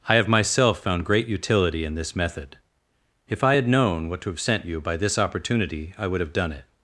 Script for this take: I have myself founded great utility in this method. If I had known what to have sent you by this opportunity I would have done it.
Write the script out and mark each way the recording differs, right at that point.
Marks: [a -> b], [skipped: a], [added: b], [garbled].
I have myself [founded -> found] great utility in this method. If I had known what to have sent you by this opportunity I would have done it.